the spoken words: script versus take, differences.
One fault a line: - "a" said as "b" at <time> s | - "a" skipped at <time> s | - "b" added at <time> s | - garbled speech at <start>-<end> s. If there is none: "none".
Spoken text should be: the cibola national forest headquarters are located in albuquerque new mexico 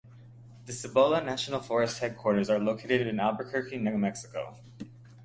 none